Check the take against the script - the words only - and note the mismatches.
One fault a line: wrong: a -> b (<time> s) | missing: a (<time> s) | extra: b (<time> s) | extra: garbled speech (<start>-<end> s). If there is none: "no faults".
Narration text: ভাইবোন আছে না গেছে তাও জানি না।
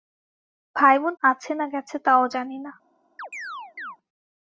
no faults